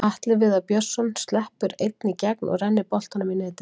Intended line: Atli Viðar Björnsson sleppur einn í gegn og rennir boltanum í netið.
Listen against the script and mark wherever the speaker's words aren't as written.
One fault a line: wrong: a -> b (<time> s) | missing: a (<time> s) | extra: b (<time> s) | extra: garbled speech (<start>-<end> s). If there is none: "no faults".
no faults